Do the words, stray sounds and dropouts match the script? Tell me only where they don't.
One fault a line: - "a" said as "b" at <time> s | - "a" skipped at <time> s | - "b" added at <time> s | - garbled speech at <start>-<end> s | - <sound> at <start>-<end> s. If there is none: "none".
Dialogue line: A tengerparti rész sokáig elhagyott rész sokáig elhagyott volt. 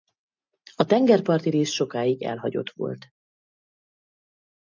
- "rész sokáig elhagyott" skipped at 2.7 s